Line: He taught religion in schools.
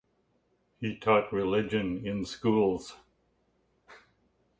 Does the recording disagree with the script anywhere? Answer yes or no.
no